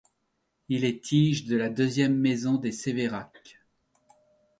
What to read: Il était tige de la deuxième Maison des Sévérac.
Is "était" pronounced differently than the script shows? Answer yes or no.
yes